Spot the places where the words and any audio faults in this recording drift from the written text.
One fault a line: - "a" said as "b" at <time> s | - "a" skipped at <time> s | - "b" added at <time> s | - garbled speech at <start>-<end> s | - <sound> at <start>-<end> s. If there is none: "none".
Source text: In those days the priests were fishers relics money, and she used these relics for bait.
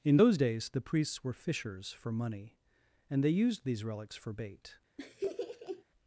- "relics" said as "for" at 1.9 s
- "she" said as "they" at 3.2 s
- laugh at 5.0-5.8 s